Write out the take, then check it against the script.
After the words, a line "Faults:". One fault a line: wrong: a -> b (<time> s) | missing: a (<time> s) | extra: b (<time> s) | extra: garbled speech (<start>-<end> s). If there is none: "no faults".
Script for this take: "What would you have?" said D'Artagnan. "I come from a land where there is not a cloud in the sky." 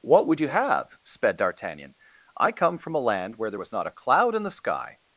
"What would you have?" sped D'Artagnan. "I come from a land where there was not a cloud in the sky."
Faults:
wrong: said -> sped (1.0 s)
wrong: is -> was (3.6 s)